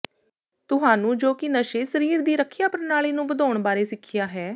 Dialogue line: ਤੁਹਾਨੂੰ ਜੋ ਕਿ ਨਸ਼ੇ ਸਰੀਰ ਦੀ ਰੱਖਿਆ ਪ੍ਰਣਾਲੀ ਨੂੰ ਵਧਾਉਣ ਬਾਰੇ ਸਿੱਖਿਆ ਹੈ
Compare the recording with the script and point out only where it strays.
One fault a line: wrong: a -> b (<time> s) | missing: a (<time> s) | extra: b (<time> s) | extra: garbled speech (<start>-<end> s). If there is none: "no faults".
no faults